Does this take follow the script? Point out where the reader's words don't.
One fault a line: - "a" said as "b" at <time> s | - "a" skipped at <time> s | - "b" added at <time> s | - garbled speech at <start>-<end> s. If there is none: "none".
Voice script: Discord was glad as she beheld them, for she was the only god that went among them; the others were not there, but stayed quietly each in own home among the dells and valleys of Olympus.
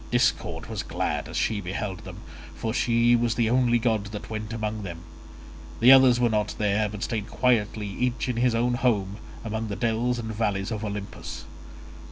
- "his" added at 8.4 s